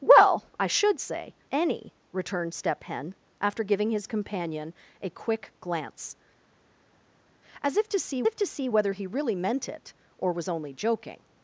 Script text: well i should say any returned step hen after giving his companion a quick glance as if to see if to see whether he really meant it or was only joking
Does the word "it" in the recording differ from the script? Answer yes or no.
no